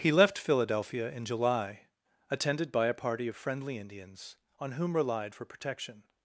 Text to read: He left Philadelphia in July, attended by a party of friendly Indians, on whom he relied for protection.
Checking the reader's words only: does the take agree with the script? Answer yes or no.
no